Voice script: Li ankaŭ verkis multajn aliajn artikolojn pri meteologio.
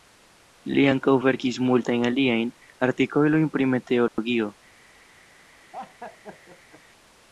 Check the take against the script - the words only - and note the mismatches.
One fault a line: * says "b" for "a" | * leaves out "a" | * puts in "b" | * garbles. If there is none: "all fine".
all fine